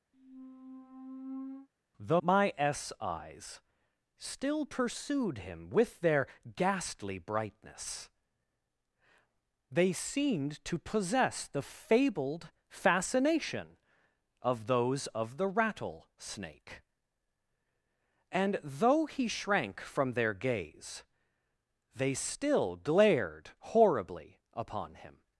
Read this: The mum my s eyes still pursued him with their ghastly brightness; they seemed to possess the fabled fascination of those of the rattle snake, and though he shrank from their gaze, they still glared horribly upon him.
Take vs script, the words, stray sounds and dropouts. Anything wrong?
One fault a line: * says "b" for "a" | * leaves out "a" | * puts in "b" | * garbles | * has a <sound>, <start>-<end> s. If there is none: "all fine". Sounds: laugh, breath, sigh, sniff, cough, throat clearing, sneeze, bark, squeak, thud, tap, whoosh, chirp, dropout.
* has a squeak, 0.1-1.7 s
* leaves out "mum"